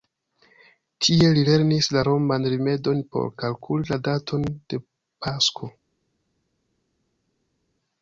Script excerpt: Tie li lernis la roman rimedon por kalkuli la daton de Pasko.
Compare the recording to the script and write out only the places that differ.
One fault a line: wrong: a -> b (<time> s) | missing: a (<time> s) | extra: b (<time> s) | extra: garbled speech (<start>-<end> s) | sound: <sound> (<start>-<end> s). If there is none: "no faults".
no faults